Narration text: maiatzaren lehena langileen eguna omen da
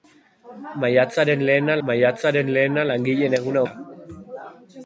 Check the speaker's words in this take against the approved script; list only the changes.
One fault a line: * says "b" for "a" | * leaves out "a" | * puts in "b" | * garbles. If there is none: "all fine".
* puts in "maiatzaren lehena"
* leaves out "omen"